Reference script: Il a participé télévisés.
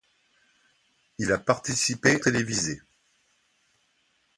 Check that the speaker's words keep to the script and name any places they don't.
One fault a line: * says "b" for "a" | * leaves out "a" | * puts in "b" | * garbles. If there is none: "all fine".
all fine